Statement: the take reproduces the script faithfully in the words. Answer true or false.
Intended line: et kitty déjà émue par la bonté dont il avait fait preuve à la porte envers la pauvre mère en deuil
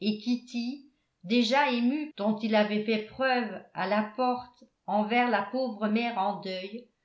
false